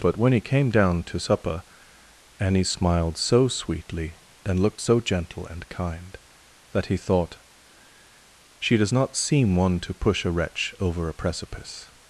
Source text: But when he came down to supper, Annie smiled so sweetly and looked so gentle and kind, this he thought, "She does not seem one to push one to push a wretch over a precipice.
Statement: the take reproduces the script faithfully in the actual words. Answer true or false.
false